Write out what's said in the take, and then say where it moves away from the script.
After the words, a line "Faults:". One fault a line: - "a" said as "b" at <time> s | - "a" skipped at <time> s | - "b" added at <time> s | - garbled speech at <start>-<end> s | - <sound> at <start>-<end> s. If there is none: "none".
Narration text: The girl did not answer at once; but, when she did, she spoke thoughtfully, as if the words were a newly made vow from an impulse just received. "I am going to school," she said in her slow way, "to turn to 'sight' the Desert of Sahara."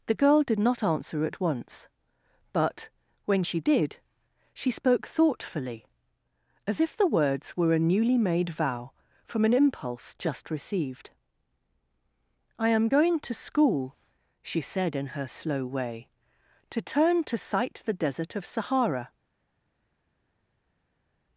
The girl did not answer at once; but, when she did, she spoke thoughtfully, as if the words were a newly made vow from an impulse just received. "I am going to school," she said in her slow way, "to turn to 'sight' the Desert of Sahara."
Faults:
none